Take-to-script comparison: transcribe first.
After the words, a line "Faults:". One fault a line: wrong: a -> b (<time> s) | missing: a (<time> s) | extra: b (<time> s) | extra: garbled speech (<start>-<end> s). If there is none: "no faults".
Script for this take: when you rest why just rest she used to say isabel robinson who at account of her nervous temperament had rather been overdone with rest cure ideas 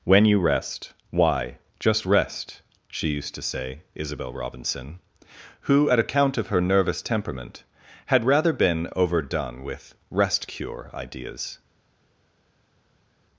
when you rest why just rest she used to say isabel robinson who at account of her nervous temperament had rather been overdone with rest cure ideas
Faults:
no faults